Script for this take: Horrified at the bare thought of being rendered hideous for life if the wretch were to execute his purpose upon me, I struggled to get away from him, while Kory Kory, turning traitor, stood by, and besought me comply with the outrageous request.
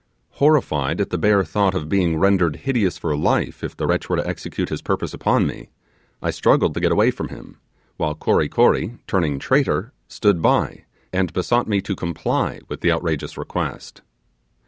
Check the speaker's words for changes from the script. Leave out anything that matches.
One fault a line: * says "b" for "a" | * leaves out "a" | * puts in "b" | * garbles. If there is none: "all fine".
* puts in "to"